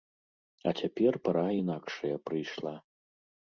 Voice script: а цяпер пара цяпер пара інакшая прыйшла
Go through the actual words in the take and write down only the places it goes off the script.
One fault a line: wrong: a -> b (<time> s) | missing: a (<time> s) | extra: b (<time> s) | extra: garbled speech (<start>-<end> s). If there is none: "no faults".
missing: цяпер пара (1.4 s)